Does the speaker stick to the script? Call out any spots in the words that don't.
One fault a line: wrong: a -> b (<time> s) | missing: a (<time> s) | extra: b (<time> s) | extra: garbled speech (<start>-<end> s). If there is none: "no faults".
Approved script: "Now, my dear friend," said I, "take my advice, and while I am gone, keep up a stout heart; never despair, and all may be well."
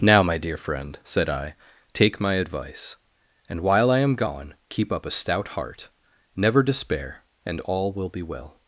wrong: may -> will (7.9 s)